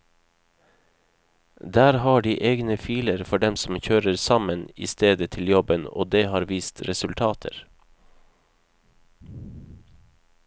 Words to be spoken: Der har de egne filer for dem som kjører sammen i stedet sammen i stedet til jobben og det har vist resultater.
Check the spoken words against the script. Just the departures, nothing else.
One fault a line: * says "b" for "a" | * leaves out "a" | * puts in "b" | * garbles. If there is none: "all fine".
* leaves out "sammen i stedet"